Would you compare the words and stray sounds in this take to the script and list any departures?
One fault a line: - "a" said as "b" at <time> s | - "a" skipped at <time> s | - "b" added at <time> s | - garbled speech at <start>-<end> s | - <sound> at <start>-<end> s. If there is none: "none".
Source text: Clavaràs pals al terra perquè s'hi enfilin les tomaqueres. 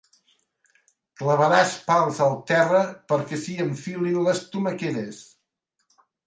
none